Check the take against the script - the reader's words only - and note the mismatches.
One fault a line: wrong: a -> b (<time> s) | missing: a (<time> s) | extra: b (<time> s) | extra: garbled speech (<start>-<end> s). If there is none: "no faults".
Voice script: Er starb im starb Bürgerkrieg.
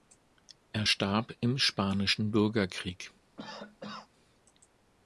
wrong: starb -> spanischen (1.6 s)